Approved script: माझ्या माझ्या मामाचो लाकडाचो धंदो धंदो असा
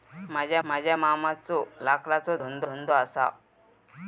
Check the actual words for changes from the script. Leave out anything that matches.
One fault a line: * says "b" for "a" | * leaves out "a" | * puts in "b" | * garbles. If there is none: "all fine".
all fine